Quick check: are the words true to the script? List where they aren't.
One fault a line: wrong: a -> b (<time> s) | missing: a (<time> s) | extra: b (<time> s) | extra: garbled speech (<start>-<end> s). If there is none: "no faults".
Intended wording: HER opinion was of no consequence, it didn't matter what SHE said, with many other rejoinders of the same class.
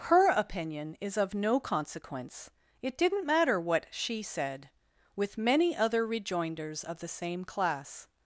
wrong: was -> is (1.0 s)